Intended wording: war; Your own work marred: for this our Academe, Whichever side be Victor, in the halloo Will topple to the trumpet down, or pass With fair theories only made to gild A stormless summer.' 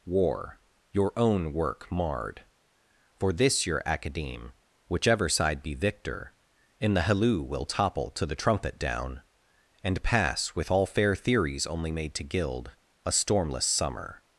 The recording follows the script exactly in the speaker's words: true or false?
false